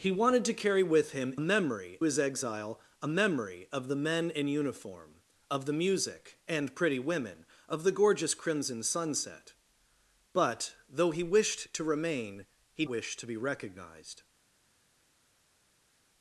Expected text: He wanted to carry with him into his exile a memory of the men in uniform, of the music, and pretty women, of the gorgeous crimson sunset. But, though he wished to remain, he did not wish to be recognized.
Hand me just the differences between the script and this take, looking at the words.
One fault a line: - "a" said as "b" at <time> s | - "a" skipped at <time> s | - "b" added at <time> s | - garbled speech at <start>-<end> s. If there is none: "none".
- "into" said as "memory" at 1.4 s
- "did not" skipped at 12.9 s